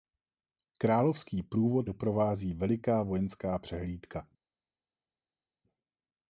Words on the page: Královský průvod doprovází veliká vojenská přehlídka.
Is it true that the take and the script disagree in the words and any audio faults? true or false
false